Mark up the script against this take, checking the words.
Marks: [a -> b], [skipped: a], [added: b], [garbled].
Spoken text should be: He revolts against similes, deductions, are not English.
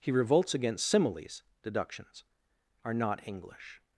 He revolts against similes, deductions, are not English.